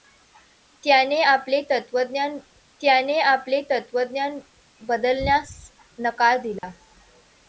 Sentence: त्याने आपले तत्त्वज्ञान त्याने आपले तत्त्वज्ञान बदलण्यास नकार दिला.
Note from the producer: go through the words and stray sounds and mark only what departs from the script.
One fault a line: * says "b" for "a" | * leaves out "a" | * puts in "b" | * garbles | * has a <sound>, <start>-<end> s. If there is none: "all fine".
* has a dropout, 6.6-6.6 s